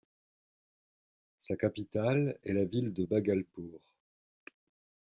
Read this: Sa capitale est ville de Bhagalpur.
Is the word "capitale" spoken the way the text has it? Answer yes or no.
yes